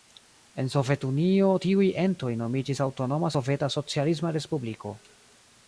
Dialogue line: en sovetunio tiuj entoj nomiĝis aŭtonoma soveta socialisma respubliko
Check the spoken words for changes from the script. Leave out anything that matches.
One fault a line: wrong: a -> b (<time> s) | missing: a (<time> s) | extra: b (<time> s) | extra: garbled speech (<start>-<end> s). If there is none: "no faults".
no faults